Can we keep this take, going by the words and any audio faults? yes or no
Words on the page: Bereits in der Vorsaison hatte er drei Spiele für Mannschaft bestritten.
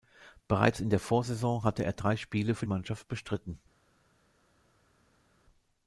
yes